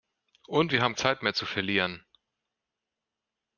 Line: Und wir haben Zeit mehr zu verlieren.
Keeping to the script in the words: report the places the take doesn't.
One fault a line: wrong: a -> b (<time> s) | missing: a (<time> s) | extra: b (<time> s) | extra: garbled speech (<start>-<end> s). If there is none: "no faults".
no faults